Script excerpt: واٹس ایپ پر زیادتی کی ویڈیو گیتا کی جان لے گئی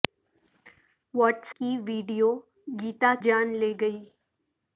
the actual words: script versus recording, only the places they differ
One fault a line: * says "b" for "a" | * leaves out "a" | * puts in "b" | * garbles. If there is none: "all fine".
* leaves out "ایپ پر زیادتی"
* leaves out "کی"